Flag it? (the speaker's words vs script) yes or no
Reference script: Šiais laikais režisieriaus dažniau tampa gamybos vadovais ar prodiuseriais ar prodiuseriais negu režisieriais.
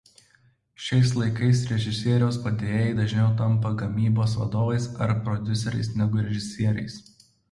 yes